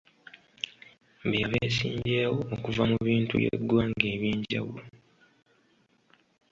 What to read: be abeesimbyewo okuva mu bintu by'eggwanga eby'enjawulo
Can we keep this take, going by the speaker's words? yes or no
yes